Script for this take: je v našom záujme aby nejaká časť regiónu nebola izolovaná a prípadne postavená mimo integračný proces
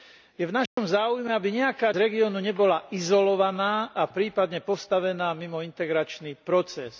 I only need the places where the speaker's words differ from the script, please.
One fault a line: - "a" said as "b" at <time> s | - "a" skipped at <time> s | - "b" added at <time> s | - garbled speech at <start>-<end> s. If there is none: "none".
- "časť" skipped at 1.9 s